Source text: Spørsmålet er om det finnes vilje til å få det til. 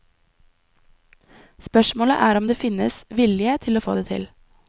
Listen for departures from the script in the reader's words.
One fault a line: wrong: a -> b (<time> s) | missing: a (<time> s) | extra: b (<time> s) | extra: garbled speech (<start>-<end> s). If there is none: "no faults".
no faults